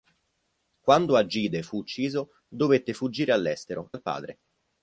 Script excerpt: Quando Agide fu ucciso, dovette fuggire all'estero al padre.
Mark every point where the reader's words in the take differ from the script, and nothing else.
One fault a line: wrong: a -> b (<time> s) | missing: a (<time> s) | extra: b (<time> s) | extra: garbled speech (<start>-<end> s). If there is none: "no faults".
no faults